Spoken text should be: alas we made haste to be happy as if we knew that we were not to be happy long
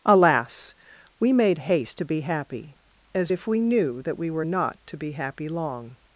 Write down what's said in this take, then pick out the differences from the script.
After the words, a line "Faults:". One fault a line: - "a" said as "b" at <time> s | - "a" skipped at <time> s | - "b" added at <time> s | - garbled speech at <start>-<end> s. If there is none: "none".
alas we made haste to be happy as if we knew that we were not to be happy long
Faults:
none